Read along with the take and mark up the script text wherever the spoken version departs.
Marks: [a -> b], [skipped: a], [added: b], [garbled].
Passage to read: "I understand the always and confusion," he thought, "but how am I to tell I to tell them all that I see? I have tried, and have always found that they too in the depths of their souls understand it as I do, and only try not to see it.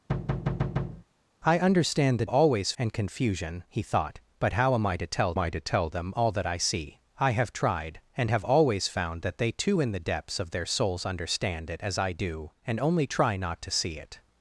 "I understand the always and confusion," he thought, "but how am I to tell I to tell them all that I see? I have tried, and have always found that they too in the depths of their souls understand it as I do, and only try not to see it.